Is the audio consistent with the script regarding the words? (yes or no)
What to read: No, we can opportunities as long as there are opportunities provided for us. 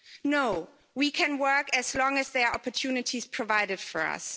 no